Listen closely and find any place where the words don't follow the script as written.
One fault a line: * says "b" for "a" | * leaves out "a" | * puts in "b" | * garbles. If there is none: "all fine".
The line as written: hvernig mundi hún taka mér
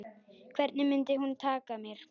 all fine